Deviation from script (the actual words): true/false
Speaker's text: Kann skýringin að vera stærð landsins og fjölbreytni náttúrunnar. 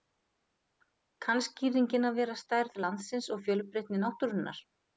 false